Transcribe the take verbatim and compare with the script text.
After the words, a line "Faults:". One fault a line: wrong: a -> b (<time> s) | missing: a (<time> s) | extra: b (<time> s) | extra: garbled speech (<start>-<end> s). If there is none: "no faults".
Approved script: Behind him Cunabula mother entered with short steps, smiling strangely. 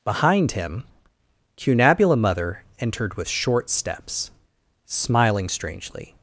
Behind him Cunabula mother entered with short steps, smiling strangely.
Faults:
no faults